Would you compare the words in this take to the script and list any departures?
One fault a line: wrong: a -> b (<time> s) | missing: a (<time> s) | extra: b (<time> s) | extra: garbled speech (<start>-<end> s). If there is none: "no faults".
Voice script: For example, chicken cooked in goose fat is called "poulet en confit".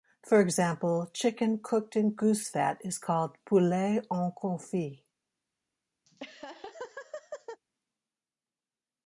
no faults